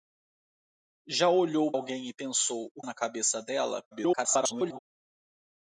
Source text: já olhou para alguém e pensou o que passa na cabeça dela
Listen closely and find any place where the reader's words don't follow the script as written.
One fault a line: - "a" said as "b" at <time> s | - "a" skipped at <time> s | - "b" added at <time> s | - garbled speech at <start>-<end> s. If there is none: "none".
- "para" skipped at 1.7 s
- "que passa" skipped at 2.8 s
- garbled speech at 3.9-4.8 s